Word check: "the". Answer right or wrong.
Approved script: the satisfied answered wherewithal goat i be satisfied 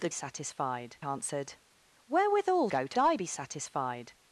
right